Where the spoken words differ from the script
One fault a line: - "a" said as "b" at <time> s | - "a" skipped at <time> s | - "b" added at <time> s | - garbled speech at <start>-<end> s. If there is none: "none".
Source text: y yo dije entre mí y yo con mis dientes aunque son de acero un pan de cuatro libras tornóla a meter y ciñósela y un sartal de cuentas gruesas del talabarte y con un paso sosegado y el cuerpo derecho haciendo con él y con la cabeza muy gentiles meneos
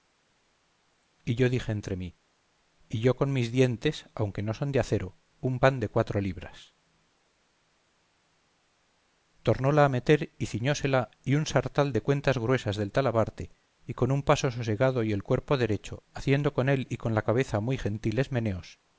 - "no" added at 4.4 s